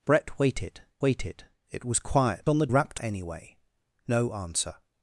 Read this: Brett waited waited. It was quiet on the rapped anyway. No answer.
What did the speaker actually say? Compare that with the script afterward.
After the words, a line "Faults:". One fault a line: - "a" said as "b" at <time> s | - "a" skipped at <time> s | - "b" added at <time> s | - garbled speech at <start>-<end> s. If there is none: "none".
Brett waited waited. It was quiet on the rapped anyway. No answer.
Faults:
none